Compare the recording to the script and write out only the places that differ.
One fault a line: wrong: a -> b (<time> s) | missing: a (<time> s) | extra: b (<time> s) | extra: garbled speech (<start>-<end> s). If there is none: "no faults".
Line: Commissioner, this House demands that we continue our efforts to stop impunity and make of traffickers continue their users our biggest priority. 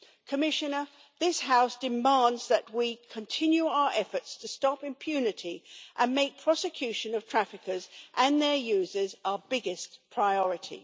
extra: prosecution (6.4 s)
wrong: continue -> and (8.1 s)